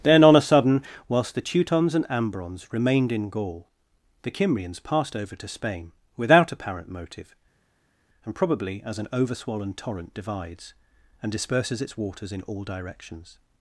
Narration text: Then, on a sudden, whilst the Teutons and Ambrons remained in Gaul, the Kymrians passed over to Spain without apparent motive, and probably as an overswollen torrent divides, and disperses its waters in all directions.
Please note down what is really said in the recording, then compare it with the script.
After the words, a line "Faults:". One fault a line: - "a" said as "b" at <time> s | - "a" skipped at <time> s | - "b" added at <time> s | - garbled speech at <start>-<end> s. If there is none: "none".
Then, on a sudden, whilst the Teutons and Ambrons remained in Gaul, the Kymrians passed over to Spain without apparent motive, and probably as an overswollen torrent divides, and disperses its waters in all directions.
Faults:
none